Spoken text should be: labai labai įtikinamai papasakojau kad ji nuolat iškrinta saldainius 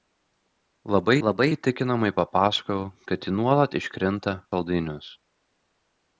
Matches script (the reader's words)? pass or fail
pass